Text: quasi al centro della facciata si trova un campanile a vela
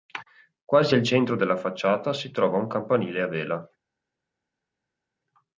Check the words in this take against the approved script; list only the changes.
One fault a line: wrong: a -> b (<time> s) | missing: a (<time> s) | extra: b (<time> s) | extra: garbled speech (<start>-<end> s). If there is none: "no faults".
no faults